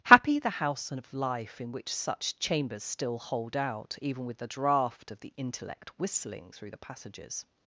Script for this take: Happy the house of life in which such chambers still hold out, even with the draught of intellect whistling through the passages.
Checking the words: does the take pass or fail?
fail